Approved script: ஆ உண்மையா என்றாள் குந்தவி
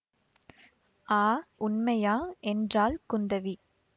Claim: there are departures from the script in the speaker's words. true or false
false